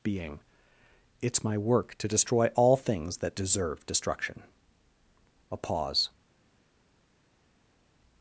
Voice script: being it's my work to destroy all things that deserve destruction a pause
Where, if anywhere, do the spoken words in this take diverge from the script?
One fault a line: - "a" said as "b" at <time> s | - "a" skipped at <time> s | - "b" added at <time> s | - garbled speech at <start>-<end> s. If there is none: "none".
none